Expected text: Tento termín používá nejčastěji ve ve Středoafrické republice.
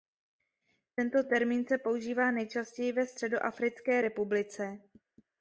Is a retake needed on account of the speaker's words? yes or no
yes